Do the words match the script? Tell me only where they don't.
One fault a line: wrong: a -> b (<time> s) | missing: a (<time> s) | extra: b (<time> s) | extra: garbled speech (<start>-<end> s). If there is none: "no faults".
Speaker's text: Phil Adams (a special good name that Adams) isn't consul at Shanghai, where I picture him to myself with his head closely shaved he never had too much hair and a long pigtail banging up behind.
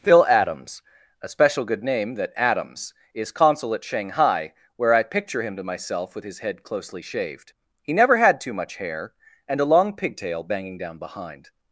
wrong: isn't -> is (3.1 s)
wrong: up -> down (10.8 s)